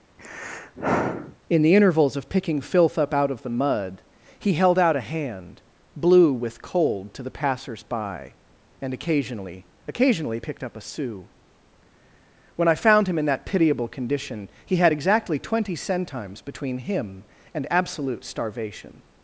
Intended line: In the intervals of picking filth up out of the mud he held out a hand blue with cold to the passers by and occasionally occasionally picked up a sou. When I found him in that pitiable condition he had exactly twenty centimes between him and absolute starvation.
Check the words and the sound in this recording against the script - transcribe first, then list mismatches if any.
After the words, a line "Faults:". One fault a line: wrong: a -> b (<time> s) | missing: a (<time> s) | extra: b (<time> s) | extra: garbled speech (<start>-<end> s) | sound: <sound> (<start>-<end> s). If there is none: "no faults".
In the intervals of picking filth up out of the mud he held out a hand blue with cold to the passers by and occasionally occasionally picked up a sou. When I found him in that pitiable condition he had exactly twenty centimes between him and absolute starvation.
Faults:
sound: sigh (0.2-1.4 s)